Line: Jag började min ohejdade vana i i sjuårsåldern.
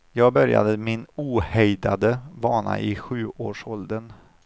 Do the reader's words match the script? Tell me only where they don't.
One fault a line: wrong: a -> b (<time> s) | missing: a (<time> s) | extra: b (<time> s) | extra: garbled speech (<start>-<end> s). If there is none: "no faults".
missing: i (3.0 s)